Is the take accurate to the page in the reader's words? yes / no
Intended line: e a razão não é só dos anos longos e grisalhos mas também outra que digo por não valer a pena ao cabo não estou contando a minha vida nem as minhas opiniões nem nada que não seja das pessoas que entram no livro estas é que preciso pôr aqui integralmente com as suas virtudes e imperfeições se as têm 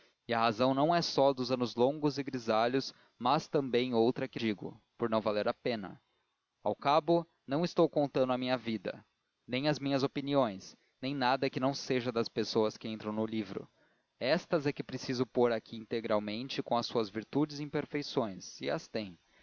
yes